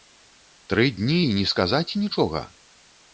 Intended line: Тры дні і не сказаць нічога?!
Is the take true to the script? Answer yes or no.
yes